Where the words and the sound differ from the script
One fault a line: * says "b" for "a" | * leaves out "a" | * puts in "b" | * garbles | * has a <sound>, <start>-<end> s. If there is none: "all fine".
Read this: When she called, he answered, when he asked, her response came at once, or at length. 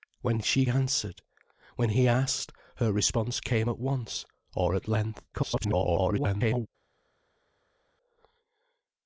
* leaves out "called he"
* garbles